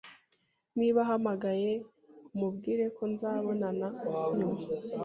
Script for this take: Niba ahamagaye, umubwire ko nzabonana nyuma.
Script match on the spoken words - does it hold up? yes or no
yes